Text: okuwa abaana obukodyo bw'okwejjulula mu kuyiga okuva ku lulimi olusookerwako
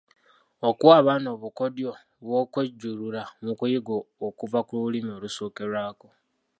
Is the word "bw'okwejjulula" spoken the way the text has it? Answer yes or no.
yes